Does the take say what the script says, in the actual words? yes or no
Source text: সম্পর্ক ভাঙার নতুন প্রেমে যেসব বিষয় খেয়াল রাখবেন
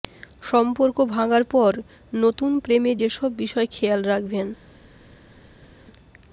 no